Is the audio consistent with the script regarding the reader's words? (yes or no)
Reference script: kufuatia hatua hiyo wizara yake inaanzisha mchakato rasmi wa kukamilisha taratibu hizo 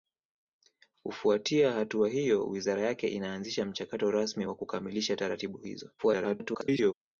no